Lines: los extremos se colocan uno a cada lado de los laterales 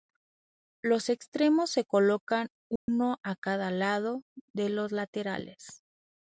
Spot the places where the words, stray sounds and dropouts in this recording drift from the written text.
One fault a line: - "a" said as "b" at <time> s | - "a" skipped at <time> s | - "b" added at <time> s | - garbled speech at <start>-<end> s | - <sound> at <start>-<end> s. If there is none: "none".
- dropout at 2.8-2.9 s